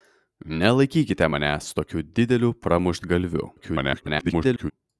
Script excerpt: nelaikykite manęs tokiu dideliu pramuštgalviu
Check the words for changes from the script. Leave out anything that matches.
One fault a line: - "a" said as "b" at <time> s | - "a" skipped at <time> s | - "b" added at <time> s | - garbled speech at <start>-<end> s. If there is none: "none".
- garbled speech at 3.6-4.7 s